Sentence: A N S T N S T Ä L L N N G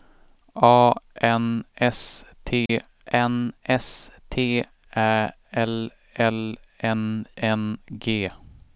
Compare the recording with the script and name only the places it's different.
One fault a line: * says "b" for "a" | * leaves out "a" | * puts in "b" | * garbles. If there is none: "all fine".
all fine